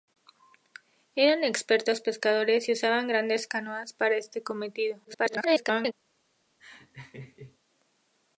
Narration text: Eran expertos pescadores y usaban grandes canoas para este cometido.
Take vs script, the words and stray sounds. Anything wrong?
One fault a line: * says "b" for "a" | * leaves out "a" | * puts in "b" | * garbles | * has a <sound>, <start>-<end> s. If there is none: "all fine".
* garbles
* has a laugh, 6.6-7.6 s